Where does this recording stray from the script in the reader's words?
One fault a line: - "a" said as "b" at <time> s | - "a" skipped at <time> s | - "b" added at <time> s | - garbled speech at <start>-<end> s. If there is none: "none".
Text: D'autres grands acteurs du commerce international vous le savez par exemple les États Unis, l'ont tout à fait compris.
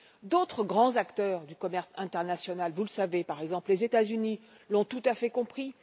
none